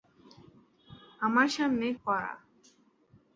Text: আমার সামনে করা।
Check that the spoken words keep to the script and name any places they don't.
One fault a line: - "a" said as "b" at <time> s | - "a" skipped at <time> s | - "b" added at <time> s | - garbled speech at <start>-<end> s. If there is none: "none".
none